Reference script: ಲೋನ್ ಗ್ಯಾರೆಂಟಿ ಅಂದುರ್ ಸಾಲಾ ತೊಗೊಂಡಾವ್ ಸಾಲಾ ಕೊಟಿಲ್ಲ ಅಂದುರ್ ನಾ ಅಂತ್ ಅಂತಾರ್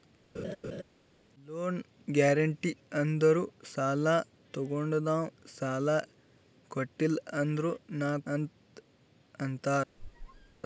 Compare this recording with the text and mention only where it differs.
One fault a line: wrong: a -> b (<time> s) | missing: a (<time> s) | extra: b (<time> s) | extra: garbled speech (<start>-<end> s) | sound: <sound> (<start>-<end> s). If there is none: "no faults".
sound: laugh (0.3-0.8 s)
sound: squeak (10.0-10.6 s)